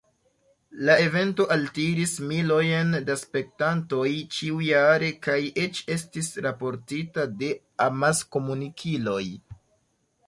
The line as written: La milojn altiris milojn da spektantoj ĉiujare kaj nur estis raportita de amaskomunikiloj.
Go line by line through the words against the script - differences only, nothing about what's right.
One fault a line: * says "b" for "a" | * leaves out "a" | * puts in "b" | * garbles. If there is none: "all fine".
* says "evento" for "milojn"
* says "eĉ" for "nur"